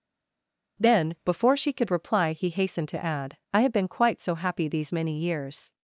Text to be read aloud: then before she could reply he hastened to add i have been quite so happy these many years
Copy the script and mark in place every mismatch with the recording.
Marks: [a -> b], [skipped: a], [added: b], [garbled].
then before she could reply he hastened to add i have been quite so happy these many years